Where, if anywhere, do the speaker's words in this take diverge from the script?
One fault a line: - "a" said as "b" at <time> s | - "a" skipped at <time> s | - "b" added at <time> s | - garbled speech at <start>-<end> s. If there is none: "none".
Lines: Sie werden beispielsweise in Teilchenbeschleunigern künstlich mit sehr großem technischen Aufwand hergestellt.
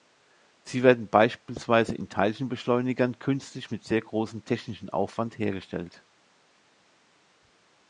none